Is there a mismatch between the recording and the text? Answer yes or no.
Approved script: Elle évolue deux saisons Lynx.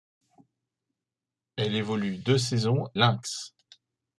no